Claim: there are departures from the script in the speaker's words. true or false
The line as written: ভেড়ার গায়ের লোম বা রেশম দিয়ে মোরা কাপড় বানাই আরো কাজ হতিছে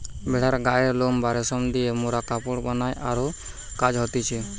false